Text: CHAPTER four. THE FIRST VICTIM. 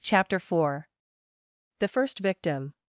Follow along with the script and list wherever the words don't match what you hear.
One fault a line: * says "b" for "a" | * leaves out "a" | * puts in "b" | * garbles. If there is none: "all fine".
all fine